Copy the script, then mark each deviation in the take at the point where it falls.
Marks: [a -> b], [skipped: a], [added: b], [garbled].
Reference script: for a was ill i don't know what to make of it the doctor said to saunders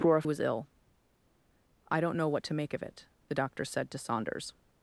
for a was ill i don't know what to make of it the doctor said to saunders